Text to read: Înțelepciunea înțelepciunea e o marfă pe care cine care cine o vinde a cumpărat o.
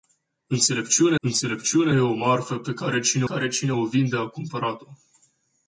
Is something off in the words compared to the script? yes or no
no